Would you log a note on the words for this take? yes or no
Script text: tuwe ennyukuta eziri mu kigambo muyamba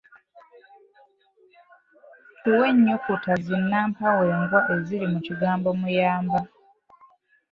yes